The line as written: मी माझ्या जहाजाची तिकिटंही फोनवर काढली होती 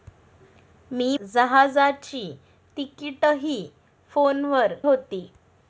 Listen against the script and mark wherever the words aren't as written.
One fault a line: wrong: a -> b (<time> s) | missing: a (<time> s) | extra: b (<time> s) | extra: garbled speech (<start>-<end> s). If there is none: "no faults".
missing: माझ्या (1.2 s)
missing: काढली (4.7 s)